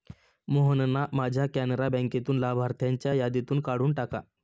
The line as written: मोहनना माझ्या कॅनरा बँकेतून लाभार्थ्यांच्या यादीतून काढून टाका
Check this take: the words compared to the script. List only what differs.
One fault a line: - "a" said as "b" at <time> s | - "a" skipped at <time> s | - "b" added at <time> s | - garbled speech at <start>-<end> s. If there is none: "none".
none